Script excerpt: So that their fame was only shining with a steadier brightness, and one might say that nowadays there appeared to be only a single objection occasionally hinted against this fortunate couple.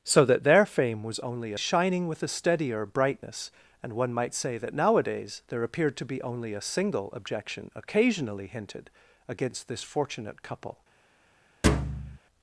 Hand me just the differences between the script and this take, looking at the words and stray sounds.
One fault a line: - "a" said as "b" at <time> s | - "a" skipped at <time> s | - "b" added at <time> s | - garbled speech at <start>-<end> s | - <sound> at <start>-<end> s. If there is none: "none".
- thud at 11.6-12.2 s